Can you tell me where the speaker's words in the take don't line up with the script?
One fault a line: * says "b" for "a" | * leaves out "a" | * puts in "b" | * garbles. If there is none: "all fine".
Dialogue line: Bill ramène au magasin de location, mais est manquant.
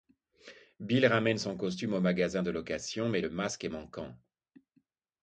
* puts in "son costume"
* puts in "le masque"